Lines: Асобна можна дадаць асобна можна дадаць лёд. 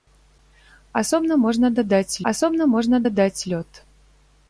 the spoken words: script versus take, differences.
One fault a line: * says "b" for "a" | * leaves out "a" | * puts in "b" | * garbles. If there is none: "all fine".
all fine